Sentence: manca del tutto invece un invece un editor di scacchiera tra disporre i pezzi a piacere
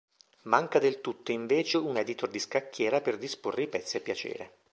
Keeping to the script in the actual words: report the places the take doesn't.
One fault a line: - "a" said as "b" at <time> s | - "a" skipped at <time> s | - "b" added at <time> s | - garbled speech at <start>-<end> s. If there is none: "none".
- "invece un" skipped at 2.0 s
- "tra" said as "per" at 3.0 s